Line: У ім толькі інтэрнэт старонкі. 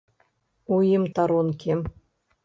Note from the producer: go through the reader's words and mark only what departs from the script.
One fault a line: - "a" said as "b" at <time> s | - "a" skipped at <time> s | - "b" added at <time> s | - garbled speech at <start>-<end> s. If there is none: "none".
- "толькі інтэрнэт" skipped at 1.0 s